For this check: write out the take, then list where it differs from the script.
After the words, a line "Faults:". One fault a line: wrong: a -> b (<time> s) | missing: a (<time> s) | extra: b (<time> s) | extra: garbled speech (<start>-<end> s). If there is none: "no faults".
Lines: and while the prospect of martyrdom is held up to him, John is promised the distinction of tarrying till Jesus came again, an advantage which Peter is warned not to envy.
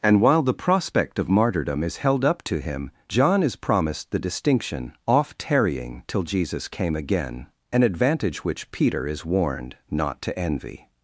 and while the prospect of martyrdom is held up to him, John is promised the distinction off tarrying till Jesus came again, an advantage which Peter is warned not to envy.
Faults:
wrong: of -> off (5.1 s)